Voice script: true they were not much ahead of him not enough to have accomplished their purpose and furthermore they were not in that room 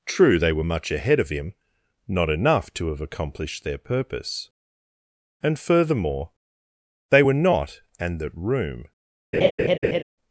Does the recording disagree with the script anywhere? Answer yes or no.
yes